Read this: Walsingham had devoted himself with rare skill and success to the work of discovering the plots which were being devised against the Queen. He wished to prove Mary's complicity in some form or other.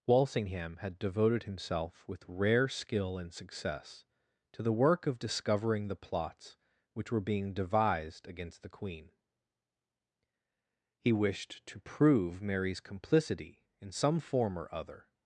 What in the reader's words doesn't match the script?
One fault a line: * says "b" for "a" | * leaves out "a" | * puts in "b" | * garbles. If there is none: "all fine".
all fine